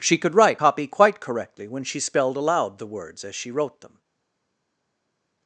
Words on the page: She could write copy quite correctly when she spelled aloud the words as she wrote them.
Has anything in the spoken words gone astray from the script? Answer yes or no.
no